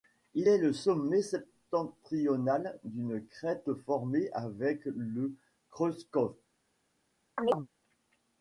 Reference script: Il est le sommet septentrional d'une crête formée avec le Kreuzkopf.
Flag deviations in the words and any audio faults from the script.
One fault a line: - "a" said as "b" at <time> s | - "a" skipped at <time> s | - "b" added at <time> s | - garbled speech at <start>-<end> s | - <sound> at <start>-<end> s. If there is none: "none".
- chirp at 7.4-7.7 s